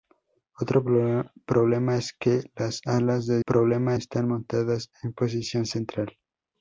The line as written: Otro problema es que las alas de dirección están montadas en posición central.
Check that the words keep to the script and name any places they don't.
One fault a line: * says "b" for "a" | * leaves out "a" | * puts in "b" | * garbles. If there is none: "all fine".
* says "problema" for "dirección"